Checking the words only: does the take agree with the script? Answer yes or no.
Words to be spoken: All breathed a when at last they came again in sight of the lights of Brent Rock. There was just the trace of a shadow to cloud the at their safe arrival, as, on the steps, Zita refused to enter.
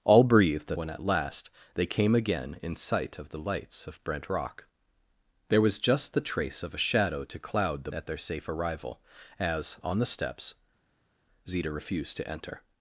yes